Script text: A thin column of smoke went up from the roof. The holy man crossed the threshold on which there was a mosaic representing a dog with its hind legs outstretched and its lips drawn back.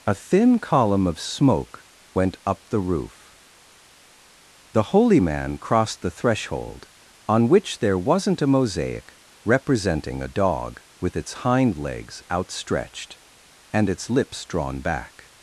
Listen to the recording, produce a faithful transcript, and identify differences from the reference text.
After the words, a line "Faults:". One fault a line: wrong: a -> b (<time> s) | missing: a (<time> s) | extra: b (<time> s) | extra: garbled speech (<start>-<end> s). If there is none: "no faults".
A thin column of smoke went up the roof. The holy man crossed the threshold on which there wasn't a mosaic representing a dog with its hind legs outstretched and its lips drawn back.
Faults:
missing: from (2.7 s)
wrong: was -> wasn't (8.0 s)